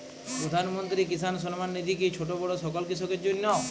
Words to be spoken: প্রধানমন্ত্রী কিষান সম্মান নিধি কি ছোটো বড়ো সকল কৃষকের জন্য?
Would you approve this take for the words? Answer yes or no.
yes